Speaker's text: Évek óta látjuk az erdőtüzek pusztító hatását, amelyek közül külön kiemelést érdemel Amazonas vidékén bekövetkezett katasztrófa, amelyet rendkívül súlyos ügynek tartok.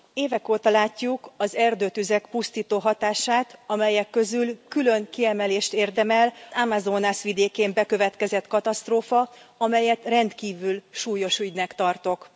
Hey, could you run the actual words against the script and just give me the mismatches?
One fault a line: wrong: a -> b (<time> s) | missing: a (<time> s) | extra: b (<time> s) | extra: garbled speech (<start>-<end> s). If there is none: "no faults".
no faults